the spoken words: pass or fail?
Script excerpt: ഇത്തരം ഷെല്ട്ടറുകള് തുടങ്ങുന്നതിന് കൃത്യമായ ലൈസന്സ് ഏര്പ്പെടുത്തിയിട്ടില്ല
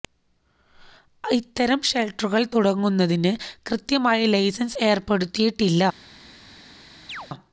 pass